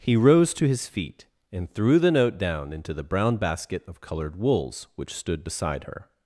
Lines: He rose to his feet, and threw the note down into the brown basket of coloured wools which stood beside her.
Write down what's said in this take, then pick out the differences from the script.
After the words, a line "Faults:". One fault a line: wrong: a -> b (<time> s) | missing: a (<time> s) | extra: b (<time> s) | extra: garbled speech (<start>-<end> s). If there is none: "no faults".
He rose to his feet, and threw the note down into the brown basket of coloured wools which stood beside her.
Faults:
no faults